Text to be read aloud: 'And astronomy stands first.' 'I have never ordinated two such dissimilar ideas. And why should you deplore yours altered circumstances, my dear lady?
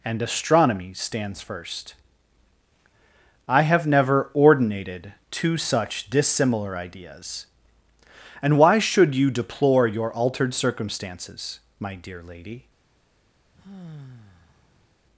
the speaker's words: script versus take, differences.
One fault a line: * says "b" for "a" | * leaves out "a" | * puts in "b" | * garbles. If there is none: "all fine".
* says "your" for "yours"